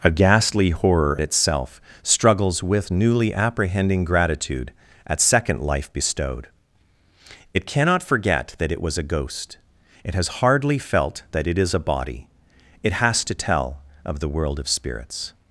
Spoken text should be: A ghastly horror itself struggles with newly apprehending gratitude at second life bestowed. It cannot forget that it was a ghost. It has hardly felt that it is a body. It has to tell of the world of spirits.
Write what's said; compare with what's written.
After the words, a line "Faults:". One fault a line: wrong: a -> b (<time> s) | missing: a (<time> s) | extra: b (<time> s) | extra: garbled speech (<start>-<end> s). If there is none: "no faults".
A ghastly horror itself struggles with newly apprehending gratitude at second life bestowed. It cannot forget that it was a ghost. It has hardly felt that it is a body. It has to tell of the world of spirits.
Faults:
no faults